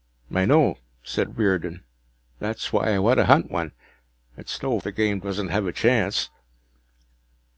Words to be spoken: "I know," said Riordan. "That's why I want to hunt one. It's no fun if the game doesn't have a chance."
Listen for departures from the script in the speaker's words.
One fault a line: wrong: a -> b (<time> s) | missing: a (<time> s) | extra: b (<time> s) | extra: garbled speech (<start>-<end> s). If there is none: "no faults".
missing: fun if (4.8 s)